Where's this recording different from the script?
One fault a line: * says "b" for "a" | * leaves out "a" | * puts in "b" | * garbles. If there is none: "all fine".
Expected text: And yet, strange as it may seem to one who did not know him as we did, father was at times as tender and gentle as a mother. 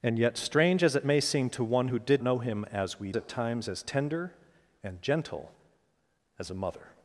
* leaves out "not"
* leaves out "did father was"